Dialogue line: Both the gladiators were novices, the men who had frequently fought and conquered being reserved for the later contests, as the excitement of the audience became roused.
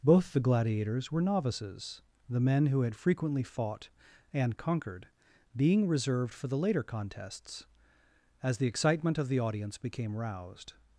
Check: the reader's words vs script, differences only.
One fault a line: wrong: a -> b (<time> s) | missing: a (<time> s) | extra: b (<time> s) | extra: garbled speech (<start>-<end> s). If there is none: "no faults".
no faults